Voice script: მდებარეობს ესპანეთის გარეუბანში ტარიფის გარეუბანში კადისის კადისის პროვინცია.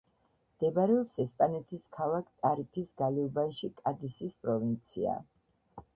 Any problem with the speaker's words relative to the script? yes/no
yes